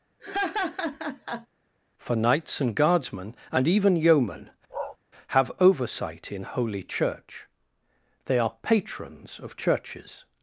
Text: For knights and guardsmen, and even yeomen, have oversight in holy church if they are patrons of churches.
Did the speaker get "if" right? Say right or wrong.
wrong